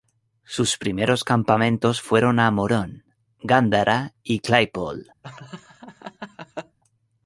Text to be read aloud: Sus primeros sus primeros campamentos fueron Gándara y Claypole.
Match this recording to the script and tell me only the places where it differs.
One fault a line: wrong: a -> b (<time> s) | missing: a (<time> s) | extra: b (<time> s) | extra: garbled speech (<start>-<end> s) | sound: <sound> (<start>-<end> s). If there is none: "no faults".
wrong: sus primeros campamentos fueron -> campamentos fueron a Morón (1.2 s)
sound: laugh (5.2-6.8 s)